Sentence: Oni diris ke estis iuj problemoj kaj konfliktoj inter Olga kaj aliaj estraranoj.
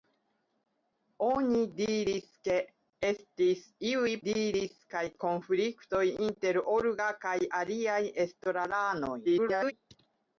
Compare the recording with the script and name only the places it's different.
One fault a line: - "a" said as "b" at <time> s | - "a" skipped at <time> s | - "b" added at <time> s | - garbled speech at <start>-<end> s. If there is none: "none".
- "problemoj" said as "diris" at 4.3 s
- garbled speech at 9.2-9.7 s